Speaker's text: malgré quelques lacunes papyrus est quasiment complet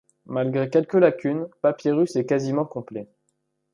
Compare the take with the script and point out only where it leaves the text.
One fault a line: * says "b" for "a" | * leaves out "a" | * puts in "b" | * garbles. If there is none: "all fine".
all fine